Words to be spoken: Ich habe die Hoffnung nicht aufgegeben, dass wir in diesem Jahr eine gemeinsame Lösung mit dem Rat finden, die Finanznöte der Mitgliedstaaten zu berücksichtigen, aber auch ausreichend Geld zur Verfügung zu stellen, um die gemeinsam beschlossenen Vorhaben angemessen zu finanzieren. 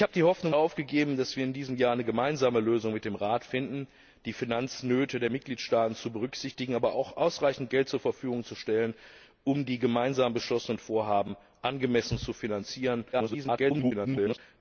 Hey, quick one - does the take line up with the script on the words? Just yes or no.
no